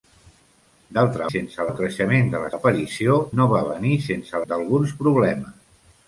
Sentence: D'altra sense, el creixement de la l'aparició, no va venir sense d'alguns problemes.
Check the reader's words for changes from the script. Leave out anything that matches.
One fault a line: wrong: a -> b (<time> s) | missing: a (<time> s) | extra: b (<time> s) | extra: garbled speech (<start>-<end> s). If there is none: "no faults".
no faults